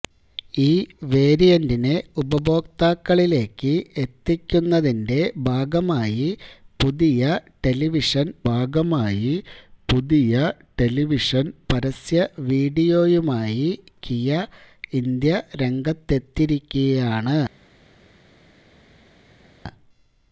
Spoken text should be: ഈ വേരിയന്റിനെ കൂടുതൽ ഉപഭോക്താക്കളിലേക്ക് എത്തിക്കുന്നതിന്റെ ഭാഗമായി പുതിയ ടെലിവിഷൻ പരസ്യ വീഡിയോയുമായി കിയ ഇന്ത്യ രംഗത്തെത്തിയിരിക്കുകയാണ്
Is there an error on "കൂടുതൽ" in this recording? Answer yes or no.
yes